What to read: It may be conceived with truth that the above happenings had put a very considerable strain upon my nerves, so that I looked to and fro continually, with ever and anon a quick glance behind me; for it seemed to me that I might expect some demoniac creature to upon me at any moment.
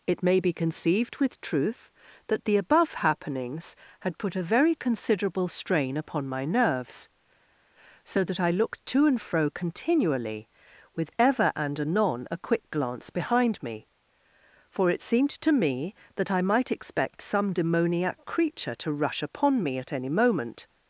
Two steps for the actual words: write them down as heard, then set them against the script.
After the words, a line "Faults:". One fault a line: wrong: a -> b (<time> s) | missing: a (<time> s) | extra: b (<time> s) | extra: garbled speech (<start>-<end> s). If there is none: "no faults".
It may be conceived with truth that the above happenings had put a very considerable strain upon my nerves, so that I looked to and fro continually, with ever and anon a quick glance behind me; for it seemed to me that I might expect some demoniac creature to rush upon me at any moment.
Faults:
extra: rush (18.9 s)